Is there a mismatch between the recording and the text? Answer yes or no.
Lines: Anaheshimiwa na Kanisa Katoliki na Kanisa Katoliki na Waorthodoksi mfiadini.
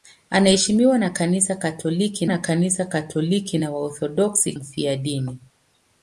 no